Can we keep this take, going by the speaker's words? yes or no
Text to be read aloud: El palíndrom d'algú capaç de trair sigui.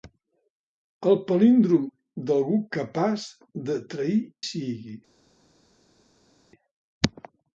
yes